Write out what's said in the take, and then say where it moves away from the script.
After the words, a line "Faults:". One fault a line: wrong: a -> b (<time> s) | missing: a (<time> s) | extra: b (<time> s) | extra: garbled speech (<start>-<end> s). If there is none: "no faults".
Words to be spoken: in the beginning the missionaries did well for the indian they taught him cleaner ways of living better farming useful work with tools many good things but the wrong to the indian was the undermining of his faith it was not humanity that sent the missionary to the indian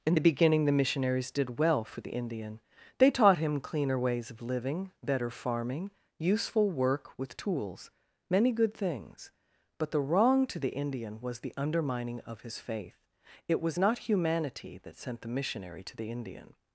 in the beginning the missionaries did well for the indian they taught him cleaner ways of living better farming useful work with tools many good things but the wrong to the indian was the undermining of his faith it was not humanity that sent the missionary to the indian
Faults:
no faults